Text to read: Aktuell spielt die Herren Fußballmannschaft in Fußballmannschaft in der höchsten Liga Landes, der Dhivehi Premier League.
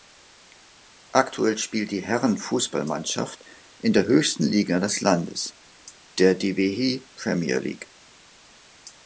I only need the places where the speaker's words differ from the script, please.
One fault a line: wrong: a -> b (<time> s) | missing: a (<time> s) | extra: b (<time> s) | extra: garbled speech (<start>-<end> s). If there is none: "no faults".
missing: Fußballmannschaft in (3.9 s)
extra: des (4.8 s)